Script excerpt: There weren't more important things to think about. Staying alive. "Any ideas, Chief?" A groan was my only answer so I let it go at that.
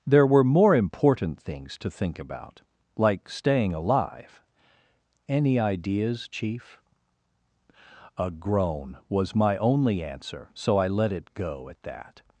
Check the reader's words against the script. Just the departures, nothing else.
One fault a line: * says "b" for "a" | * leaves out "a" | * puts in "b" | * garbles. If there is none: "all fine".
* says "were" for "weren't"
* puts in "Like"